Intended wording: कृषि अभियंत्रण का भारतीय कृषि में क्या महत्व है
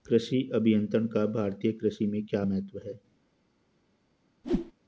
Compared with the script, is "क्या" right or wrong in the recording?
right